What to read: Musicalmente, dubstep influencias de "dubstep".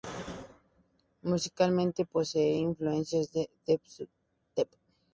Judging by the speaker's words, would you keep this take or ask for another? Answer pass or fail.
fail